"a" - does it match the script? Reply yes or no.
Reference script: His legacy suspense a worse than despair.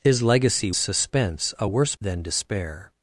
yes